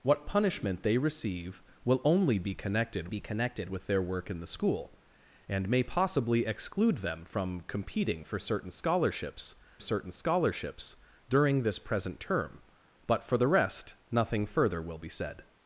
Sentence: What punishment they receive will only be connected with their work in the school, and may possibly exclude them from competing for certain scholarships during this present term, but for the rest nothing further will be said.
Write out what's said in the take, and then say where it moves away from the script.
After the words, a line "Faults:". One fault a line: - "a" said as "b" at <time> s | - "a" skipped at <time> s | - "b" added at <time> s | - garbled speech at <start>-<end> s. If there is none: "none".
What punishment they receive will only be connected be connected with their work in the school, and may possibly exclude them from competing for certain scholarships certain scholarships during this present term, but for the rest nothing further will be said.
Faults:
- "be connected" added at 3.1 s
- "certain scholarships" added at 9.8 s